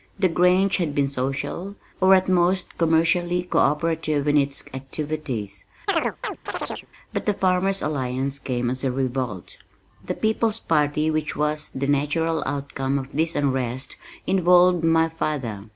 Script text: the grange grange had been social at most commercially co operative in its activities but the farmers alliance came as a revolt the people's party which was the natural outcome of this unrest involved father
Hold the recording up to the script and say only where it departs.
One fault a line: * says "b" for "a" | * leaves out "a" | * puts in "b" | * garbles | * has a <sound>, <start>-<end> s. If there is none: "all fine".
* leaves out "grange"
* puts in "or"
* has a chirp, 5.9-6.9 s
* puts in "my"